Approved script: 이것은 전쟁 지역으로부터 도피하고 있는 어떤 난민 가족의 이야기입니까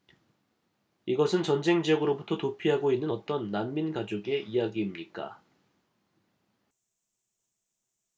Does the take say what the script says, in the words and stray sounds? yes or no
yes